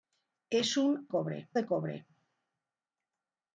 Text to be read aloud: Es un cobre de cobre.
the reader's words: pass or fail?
pass